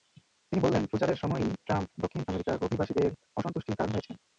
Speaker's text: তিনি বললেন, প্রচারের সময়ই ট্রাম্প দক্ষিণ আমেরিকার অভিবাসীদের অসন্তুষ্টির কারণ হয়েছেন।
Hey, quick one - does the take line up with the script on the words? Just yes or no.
yes